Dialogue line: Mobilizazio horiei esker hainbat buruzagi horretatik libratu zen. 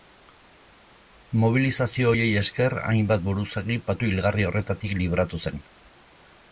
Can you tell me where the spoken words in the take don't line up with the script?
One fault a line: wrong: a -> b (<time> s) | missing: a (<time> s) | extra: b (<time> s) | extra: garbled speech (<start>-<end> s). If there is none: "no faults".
extra: patu hilgarri (3.9 s)